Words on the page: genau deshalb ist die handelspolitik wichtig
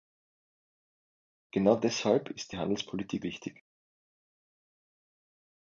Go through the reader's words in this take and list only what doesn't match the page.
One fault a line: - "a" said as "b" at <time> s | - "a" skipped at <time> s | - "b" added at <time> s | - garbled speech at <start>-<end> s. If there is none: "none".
none